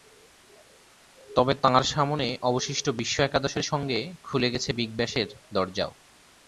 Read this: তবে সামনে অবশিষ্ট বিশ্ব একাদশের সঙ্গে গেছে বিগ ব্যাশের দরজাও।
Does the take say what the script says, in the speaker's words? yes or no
no